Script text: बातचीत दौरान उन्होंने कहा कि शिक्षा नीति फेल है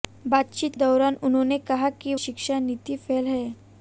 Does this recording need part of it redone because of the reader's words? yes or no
no